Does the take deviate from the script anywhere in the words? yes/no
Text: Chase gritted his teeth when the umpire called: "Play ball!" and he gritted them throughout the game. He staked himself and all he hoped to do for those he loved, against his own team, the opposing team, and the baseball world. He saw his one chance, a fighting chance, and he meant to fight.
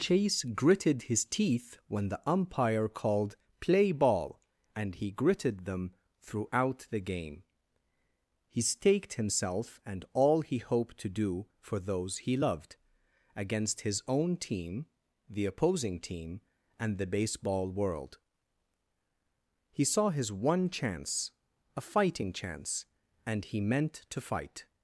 no